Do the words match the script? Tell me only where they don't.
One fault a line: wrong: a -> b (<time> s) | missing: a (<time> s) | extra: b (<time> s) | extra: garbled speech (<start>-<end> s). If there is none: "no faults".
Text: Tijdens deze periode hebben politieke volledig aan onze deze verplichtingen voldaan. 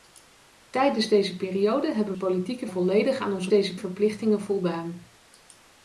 no faults